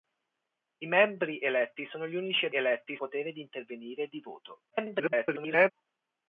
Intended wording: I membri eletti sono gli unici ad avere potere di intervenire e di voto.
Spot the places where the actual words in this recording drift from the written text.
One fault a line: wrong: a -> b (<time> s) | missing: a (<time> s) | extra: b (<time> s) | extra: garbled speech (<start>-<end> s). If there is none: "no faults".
wrong: avere -> eletti (2.5 s)
extra: garbled speech (4.7-5.7 s)